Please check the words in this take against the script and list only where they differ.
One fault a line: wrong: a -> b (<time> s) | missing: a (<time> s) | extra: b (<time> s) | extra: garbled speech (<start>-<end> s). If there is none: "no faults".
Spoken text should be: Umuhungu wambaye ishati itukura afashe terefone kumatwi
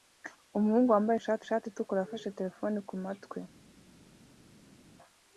extra: ishati (1.4 s)